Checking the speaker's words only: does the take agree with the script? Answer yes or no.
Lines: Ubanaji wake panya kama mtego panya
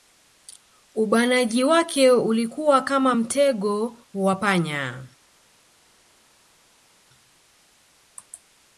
no